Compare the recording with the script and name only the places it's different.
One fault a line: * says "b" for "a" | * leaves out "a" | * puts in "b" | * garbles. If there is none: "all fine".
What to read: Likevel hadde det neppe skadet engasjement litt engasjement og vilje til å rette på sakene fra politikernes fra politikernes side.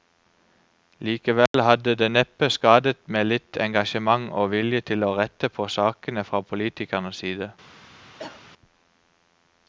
* says "med" for "engasjement"
* leaves out "fra politikernes"